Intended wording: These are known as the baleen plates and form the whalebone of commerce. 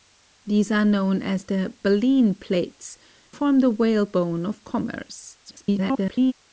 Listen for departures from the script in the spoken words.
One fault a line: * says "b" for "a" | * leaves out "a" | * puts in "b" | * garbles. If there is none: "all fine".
* leaves out "and"
* garbles